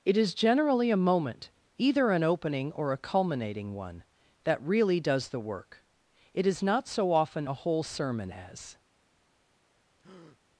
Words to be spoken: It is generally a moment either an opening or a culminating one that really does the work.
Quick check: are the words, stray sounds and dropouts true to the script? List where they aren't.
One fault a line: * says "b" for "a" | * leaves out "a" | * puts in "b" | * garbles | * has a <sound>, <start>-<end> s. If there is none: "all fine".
* puts in "It is not so often a whole sermon as"
* has a breath, 10.0-10.4 s